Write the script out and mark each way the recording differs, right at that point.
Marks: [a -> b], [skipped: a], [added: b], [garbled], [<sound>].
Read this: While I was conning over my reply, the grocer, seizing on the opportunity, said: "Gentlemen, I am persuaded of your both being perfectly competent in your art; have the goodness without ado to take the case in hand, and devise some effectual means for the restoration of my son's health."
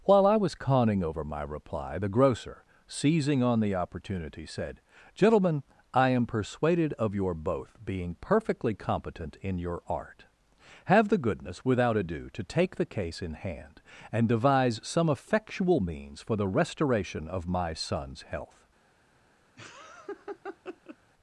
While I was conning over my reply, the grocer, seizing on the opportunity, said: "Gentlemen, I am persuaded of your both being perfectly competent in your art; have the goodness without ado to take the case in hand, and devise some effectual means for the restoration of my son's health." [laugh]